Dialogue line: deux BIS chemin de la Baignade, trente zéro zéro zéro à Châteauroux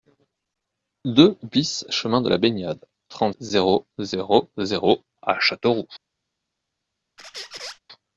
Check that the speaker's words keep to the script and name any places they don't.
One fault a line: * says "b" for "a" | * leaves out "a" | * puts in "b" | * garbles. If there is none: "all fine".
all fine